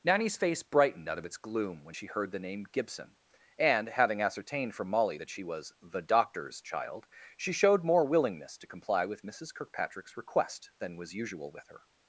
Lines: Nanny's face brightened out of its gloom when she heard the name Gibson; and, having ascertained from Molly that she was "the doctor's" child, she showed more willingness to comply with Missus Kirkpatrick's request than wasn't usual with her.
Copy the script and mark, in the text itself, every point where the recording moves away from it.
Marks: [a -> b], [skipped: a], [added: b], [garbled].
Nanny's face brightened out of its gloom when she heard the name Gibson; and, having ascertained from Molly that she was "the doctor's" child, she showed more willingness to comply with Missus Kirkpatrick's request than [wasn't -> was] usual with her.